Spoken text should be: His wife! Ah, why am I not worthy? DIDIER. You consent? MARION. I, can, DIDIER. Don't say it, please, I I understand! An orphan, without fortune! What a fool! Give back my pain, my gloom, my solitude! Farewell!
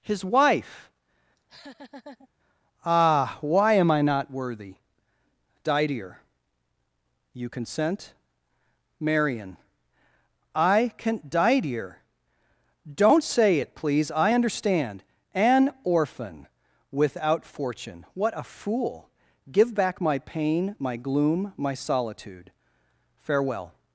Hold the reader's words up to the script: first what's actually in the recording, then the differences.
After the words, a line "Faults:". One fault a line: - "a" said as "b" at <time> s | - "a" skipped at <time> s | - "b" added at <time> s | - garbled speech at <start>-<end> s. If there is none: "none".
His wife! Ah, why am I not worthy? DIDIER. You consent? MARION. I, can, DIDIER. Don't say it, please, I understand! An orphan, without fortune! What a fool! Give back my pain, my gloom, my solitude! Farewell!
Faults:
- "I" skipped at 14.3 s